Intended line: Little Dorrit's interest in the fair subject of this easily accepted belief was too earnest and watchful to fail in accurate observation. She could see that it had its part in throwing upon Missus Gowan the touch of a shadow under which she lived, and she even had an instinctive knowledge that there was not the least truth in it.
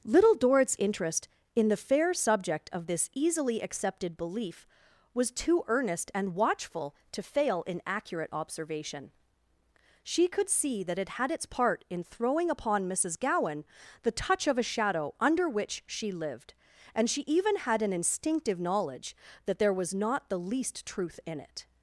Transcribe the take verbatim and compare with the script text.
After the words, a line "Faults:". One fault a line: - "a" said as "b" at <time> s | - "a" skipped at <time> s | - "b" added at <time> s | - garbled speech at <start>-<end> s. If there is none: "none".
Little Dorrit's interest in the fair subject of this easily accepted belief was too earnest and watchful to fail in accurate observation. She could see that it had its part in throwing upon Missus Gowan the touch of a shadow under which she lived, and she even had an instinctive knowledge that there was not the least truth in it.
Faults:
none